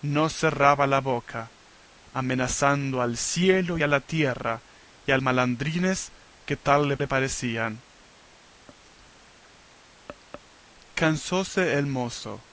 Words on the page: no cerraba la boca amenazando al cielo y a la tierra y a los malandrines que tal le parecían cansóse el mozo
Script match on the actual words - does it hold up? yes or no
no